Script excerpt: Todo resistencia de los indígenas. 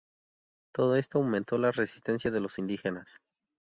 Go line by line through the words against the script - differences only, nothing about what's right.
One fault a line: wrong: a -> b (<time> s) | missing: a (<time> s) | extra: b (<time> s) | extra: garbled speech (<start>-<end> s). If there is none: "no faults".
extra: esto aumentó la (0.9 s)